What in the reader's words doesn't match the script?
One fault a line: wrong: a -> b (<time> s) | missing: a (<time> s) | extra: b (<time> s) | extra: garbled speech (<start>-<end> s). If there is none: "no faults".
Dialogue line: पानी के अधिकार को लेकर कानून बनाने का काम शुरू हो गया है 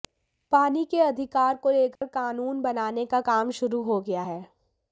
no faults